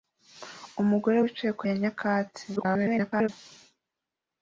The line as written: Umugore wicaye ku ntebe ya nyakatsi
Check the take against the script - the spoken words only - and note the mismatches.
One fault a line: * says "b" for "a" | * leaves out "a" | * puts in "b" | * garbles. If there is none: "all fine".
* leaves out "ntebe"
* garbles